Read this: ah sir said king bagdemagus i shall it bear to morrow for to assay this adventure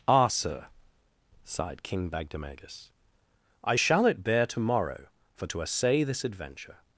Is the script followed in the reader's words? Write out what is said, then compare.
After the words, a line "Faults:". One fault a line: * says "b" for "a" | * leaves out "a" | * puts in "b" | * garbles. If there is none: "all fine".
ah sir sighed king bagdemagus i shall it bear to morrow for to assay this adventure
Faults:
* says "sighed" for "said"